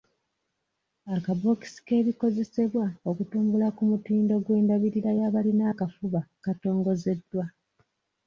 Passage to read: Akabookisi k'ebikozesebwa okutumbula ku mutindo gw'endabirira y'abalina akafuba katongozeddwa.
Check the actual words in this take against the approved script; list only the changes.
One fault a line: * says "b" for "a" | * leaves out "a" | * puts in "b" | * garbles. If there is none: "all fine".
all fine